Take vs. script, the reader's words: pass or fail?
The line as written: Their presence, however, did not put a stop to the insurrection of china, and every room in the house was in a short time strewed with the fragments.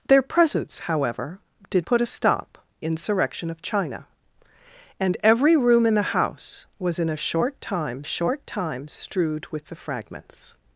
fail